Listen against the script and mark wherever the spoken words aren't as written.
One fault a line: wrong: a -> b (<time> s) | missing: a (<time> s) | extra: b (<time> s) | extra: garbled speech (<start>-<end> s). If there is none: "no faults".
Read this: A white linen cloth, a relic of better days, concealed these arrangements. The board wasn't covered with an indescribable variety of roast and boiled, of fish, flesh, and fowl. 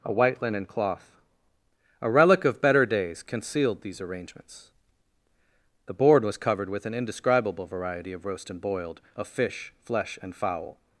wrong: wasn't -> was (6.2 s)